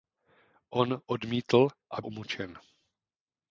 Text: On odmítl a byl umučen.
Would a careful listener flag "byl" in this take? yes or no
yes